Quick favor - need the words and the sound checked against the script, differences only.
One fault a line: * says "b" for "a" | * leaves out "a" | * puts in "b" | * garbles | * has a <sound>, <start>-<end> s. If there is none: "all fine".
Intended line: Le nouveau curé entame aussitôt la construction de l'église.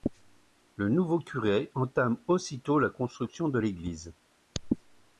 all fine